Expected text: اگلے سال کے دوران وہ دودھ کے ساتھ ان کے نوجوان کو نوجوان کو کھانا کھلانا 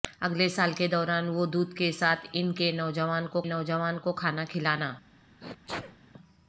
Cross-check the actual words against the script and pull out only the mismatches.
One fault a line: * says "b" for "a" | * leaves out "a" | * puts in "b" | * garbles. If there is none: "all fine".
all fine